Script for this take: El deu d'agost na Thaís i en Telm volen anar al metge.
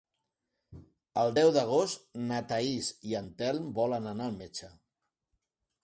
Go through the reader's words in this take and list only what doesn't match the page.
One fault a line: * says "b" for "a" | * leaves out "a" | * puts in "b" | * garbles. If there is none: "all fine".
all fine